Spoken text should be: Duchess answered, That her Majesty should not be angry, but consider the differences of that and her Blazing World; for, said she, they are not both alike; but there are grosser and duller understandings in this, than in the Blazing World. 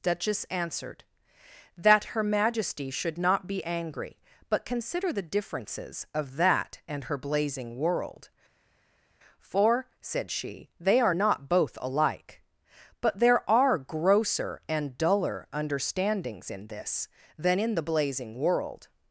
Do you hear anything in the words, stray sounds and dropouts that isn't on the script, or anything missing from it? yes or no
no